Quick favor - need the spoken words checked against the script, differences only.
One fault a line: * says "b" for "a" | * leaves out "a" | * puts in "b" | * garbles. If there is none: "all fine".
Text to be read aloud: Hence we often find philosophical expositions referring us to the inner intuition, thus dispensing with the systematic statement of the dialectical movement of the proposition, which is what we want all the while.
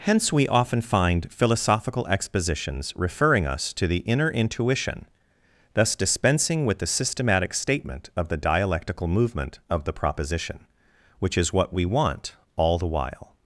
all fine